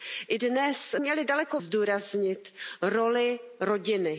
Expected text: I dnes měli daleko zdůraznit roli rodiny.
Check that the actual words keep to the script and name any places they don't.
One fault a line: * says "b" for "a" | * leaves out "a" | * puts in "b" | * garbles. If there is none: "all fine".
all fine